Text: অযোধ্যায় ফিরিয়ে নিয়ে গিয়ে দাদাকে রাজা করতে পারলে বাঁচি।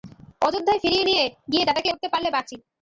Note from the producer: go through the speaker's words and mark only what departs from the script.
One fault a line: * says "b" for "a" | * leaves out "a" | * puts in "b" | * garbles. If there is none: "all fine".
* leaves out "রাজা"